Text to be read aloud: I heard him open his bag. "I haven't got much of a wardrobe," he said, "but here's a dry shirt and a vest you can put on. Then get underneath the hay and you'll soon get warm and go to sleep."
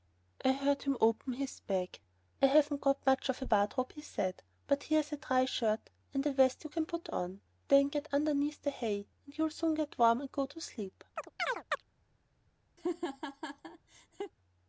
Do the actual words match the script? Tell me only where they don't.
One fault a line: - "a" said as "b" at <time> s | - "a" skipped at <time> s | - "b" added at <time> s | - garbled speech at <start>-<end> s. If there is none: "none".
none